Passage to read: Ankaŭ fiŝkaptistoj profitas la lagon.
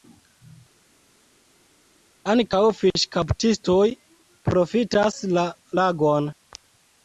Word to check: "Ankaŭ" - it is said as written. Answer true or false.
true